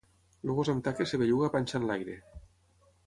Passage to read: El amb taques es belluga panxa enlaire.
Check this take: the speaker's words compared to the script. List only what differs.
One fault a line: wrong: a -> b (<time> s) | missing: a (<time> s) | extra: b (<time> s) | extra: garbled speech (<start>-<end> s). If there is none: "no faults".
extra: gos (0.6 s)